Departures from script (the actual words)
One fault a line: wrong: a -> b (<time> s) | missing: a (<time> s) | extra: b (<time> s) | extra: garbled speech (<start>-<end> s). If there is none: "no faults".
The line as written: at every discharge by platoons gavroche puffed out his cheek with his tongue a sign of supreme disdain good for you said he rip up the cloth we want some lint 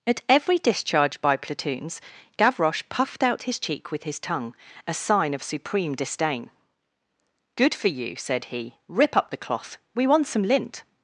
no faults